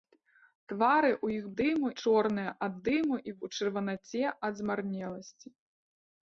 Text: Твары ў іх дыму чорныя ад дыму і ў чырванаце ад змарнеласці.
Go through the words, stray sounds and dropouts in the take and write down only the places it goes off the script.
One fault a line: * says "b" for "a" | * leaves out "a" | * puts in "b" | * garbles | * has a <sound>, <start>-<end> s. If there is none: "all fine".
all fine